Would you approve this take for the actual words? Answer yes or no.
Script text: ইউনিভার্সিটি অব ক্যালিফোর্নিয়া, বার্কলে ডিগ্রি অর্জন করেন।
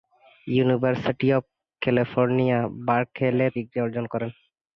yes